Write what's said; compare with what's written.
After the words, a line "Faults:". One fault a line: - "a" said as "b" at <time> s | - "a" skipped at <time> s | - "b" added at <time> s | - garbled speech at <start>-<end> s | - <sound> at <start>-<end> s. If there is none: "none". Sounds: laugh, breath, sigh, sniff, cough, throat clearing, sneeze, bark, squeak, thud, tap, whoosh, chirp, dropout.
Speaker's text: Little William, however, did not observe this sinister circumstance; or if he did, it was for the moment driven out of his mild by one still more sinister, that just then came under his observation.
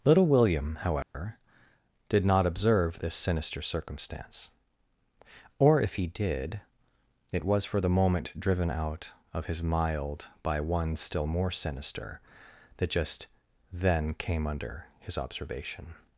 Little William, however, did not observe this sinister circumstance; or if he did, it was for the moment driven out of his mild by one still more sinister, that just then came under his observation.
Faults:
- dropout at 1.0-1.1 s